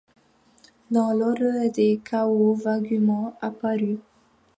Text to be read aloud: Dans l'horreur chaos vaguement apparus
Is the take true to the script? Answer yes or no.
no